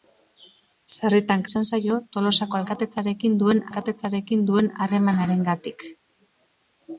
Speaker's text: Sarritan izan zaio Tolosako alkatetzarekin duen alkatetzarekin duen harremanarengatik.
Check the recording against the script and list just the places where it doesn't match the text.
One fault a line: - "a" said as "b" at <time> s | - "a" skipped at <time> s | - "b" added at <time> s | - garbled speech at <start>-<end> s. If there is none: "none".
none